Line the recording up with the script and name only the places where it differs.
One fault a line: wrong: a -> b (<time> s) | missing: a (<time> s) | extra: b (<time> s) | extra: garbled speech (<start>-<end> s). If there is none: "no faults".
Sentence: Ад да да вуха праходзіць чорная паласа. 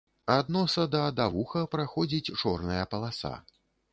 extra: носа (0.5 s)